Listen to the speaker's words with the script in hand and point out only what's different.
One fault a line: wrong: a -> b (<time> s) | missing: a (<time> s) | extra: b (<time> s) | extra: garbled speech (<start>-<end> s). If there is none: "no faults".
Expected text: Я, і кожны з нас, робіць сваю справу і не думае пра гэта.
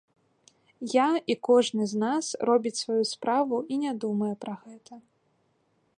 no faults